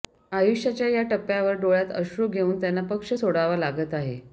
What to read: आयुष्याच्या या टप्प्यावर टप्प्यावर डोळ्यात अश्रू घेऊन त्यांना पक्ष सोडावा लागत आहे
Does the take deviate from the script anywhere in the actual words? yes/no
yes